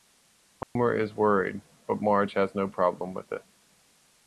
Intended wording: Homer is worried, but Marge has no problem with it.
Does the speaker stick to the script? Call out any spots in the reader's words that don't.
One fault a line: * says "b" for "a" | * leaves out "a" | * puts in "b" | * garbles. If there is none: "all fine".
all fine